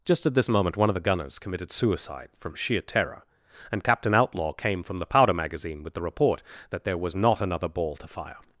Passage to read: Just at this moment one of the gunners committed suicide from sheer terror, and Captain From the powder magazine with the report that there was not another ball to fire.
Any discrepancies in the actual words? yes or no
yes